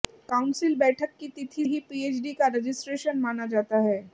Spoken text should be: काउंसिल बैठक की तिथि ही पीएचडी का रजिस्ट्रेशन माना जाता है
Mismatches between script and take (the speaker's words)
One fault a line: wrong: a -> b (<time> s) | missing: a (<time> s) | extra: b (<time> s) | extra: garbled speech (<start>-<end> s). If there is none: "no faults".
no faults